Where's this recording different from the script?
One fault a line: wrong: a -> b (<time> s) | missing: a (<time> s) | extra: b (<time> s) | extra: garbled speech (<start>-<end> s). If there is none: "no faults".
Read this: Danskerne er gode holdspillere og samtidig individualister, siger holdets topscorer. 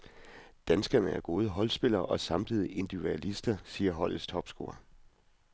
no faults